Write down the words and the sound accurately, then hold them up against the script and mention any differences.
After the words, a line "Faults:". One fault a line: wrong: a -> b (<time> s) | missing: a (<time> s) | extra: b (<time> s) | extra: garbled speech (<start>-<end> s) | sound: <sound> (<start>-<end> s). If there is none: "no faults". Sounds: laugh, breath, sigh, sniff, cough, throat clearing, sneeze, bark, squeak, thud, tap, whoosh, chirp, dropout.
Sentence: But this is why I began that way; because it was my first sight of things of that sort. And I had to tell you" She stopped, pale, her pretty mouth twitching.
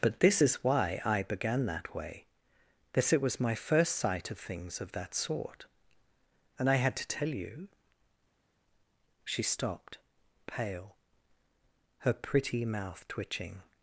But this is why I began that way; that it was my first sight of things of that sort. And I had to tell you" She stopped, pale, her pretty mouth twitching.
Faults:
wrong: because -> that (2.9 s)